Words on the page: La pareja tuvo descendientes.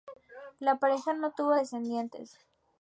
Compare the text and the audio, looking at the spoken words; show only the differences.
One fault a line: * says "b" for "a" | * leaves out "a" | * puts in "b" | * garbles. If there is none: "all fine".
* puts in "no"